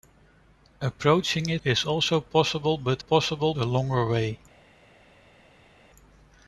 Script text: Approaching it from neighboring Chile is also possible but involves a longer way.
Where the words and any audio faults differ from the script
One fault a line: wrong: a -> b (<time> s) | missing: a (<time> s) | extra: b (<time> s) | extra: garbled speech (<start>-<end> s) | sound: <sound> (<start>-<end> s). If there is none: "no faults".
missing: from neighboring Chile (1.6 s)
wrong: involves -> possible (3.0 s)